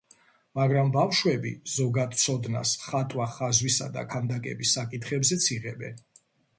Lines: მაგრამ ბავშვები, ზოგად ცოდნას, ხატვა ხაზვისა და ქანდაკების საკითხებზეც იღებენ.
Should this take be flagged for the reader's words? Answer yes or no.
no